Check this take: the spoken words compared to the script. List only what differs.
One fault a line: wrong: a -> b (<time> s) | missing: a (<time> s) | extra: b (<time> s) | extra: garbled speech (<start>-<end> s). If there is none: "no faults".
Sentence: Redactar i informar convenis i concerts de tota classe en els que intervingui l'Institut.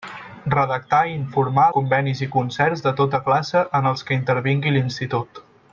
no faults